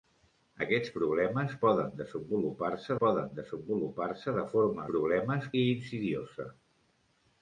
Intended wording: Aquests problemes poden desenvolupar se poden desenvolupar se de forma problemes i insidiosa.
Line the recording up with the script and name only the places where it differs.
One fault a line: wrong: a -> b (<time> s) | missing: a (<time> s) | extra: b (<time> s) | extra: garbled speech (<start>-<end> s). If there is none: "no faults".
no faults